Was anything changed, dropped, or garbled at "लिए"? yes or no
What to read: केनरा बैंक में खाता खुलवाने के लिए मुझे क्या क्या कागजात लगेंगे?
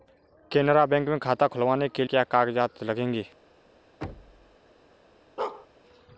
yes